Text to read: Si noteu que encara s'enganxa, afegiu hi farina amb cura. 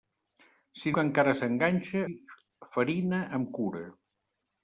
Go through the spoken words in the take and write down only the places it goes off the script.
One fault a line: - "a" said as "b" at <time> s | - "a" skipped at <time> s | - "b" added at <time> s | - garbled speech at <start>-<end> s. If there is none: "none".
- "noteu" skipped at 0.9 s
- "afegiu" skipped at 2.0 s